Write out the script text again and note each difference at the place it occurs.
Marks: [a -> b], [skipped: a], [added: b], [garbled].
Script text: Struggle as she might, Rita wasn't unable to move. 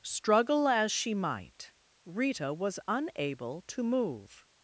Struggle as she might, Rita [wasn't -> was] unable to move.